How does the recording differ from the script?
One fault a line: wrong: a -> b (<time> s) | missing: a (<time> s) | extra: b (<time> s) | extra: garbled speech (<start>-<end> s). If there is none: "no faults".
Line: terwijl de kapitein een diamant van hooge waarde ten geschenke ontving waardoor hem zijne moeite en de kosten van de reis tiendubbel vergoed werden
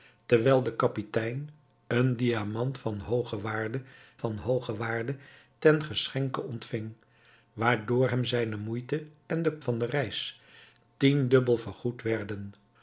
extra: van hooge waarde (4.2 s)
missing: kosten (9.6 s)